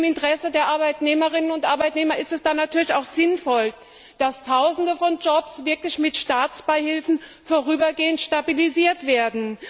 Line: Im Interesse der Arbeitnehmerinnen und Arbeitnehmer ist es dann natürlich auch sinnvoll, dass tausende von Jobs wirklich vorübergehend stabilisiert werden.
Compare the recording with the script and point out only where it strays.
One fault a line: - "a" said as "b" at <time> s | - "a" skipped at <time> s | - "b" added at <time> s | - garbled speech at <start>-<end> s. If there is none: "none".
- "mit Staatsbeihilfen" added at 6.0 s